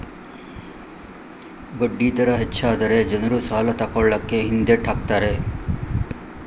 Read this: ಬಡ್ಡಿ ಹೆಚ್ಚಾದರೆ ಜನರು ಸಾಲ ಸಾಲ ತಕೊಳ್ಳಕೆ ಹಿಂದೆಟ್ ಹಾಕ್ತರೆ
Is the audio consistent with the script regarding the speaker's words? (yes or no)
no